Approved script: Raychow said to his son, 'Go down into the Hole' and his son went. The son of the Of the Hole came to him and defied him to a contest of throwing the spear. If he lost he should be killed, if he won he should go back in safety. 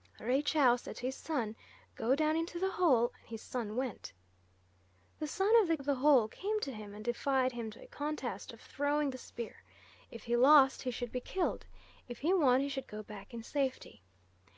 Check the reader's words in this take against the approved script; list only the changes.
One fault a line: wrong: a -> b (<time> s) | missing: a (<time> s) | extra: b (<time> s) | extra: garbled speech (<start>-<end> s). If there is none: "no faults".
no faults